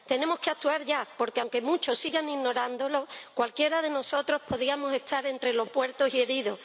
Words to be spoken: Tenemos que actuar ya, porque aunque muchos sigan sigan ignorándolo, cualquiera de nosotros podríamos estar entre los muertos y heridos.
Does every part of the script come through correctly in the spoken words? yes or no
no